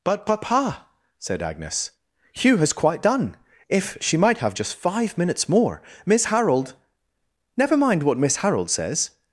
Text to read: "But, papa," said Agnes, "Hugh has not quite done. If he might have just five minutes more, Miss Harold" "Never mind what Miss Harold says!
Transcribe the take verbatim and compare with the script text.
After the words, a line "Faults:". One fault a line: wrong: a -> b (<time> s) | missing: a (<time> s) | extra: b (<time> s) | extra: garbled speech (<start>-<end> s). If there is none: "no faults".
"But, papa," said Agnes, "Hugh has quite done. If she might have just five minutes more, Miss Harold" "Never mind what Miss Harold says!
Faults:
missing: not (2.7 s)
wrong: he -> she (4.0 s)